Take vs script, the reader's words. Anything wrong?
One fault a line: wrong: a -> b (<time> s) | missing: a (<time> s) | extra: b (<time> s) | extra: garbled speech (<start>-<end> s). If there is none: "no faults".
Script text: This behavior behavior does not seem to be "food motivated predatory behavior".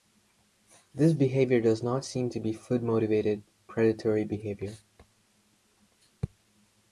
missing: behavior (1.6 s)